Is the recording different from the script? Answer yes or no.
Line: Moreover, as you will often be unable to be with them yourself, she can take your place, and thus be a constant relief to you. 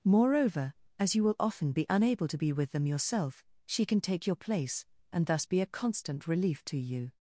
no